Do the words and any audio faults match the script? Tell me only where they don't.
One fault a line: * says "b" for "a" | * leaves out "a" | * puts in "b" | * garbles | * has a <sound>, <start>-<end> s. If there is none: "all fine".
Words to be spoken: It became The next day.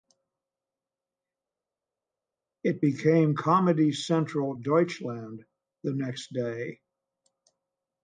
* puts in "Comedy Central Deutschland"